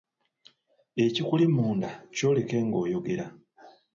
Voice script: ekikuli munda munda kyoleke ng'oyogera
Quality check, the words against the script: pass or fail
fail